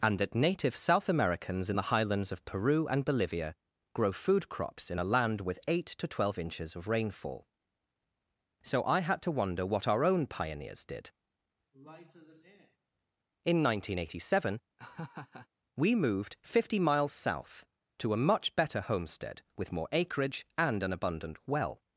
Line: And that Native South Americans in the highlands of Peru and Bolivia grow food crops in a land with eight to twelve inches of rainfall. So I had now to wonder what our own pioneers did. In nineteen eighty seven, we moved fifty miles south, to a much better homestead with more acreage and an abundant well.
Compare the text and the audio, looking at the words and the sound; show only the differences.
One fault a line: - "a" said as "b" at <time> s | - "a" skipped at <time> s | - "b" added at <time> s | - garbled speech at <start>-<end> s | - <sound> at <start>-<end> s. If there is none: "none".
- "now" skipped at 9.2 s
- sigh at 11.7-12.8 s
- laugh at 14.8-15.5 s